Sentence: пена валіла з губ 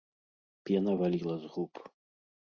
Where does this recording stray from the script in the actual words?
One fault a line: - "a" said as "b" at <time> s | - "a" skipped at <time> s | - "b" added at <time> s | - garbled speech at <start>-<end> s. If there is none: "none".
none